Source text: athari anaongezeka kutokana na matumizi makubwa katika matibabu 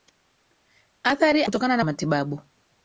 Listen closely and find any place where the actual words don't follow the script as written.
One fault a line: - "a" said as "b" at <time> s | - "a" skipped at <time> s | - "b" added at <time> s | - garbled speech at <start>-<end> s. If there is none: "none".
- "anaongezeka" skipped at 1.4 s
- "matumizi makubwa katika" skipped at 1.8 s